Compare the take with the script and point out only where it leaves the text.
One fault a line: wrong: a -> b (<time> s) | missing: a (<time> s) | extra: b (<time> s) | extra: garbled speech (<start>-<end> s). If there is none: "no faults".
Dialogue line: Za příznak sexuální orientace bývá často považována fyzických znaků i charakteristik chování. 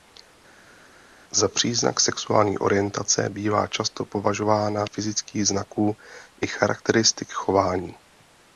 no faults